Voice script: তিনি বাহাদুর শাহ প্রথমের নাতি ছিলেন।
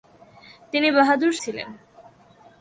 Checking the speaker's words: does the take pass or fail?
fail